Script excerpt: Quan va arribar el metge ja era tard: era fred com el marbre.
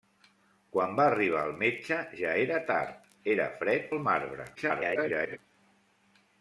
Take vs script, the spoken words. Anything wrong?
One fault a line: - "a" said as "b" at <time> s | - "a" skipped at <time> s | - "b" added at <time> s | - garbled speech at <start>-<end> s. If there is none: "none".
- "com" skipped at 3.9 s
- garbled speech at 4.6-5.4 s